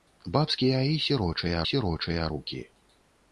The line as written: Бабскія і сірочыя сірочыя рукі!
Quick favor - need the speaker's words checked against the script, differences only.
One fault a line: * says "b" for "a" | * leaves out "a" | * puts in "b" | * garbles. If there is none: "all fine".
all fine